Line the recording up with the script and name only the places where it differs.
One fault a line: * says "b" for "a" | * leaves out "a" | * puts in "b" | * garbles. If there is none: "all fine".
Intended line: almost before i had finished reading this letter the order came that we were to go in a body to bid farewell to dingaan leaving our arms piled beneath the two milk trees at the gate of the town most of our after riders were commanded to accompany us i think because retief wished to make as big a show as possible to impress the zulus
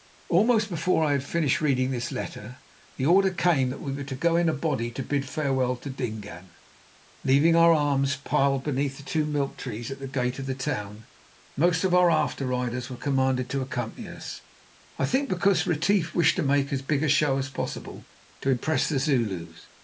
all fine